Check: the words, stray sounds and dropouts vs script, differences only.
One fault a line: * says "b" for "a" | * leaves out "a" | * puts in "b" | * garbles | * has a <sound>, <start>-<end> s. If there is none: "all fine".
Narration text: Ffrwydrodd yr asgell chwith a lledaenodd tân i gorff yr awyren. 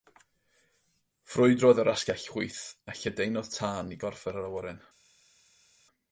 all fine